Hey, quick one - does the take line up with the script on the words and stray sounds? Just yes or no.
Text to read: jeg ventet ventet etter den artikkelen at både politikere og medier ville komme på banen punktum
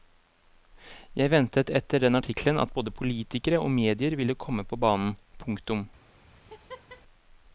no